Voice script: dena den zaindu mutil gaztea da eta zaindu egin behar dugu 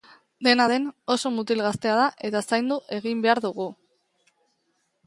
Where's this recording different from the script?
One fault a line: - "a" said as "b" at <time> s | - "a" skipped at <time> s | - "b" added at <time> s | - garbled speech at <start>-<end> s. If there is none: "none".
- "zaindu" said as "oso" at 1.1 s